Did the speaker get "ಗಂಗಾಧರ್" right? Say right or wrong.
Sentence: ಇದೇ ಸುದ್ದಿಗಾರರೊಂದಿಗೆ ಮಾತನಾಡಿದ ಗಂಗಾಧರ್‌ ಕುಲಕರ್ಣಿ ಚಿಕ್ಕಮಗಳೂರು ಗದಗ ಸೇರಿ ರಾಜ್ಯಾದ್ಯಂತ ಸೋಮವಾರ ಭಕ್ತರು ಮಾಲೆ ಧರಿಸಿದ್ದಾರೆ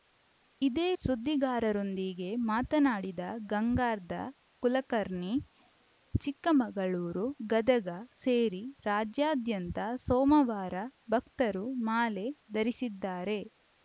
right